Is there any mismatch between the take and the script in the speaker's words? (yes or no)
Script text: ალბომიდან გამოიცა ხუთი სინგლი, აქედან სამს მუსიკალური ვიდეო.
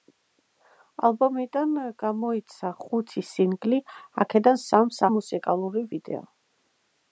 no